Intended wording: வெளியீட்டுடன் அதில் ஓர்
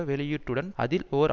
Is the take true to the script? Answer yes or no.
yes